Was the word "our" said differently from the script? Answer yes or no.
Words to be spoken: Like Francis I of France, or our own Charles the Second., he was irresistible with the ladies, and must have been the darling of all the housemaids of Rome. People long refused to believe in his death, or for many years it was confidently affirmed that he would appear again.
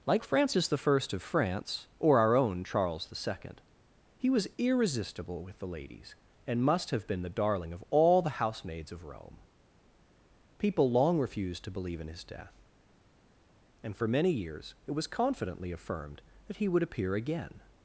no